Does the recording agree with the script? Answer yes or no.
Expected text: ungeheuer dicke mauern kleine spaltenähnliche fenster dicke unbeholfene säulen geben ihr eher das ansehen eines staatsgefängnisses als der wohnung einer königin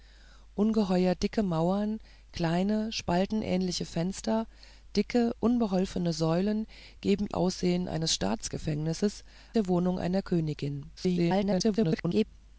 no